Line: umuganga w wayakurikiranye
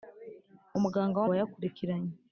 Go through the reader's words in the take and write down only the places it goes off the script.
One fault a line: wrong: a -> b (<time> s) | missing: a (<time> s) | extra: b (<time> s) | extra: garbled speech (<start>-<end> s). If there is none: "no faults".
no faults